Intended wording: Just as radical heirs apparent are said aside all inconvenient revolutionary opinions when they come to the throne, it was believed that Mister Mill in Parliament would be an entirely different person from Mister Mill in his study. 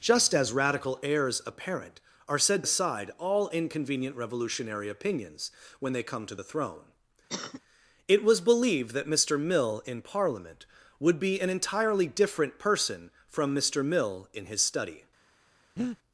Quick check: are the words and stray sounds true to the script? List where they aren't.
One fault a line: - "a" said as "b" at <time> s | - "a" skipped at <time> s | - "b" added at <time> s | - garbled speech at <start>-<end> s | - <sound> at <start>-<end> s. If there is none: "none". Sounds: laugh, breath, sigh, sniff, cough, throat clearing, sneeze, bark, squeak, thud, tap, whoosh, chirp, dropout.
- cough at 7.3-7.6 s
- breath at 15.8-16.0 s